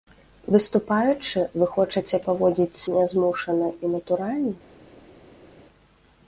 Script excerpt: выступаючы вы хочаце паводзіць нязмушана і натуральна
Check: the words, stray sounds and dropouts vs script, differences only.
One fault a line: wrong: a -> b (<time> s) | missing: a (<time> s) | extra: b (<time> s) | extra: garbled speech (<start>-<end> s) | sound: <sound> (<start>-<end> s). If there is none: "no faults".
no faults